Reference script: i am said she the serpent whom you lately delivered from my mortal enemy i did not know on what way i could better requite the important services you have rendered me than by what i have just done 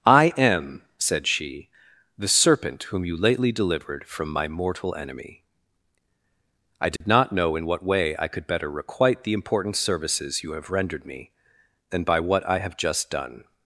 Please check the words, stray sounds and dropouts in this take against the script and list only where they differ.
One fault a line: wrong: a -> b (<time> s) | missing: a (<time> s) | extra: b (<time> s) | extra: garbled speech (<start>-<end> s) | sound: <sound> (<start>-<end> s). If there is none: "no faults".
sound: dropout (7.0-7.0 s)
wrong: on -> in (7.5 s)